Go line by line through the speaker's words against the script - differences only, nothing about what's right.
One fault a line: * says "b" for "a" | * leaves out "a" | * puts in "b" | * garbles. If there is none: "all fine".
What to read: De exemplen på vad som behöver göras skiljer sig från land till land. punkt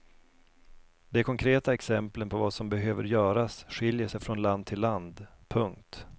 * puts in "konkreta"